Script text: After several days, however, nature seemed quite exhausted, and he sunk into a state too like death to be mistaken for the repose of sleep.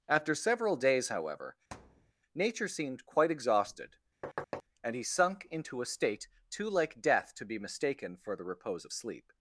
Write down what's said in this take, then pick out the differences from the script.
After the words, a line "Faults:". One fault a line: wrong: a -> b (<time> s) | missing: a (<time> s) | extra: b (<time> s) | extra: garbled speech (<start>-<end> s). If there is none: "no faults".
After several days, however, nature seemed quite exhausted, and he sunk into a state too like death to be mistaken for the repose of sleep.
Faults:
no faults